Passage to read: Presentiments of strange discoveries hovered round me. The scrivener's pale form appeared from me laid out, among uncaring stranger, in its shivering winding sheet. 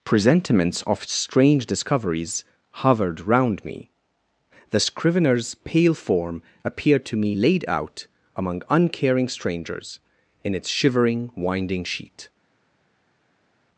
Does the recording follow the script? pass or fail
fail